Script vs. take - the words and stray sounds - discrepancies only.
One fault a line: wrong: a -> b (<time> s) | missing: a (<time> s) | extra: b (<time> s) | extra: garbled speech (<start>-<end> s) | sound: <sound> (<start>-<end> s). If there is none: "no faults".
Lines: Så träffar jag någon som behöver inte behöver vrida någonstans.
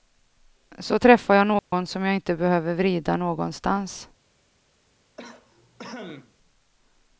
sound: dropout (1.6-1.7 s)
wrong: behöver -> jag (2.0 s)
sound: cough (5.2-6.3 s)